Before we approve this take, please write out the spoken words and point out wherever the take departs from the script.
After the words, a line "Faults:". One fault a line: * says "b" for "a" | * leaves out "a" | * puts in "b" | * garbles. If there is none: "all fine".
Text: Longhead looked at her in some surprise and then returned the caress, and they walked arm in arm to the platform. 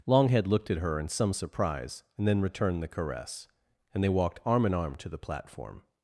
Longhead looked at her in some surprise and then returned the caress, and they walked arm in arm to the platform.
Faults:
all fine